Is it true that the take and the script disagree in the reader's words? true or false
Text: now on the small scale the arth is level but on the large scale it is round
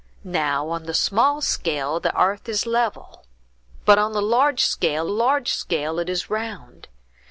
true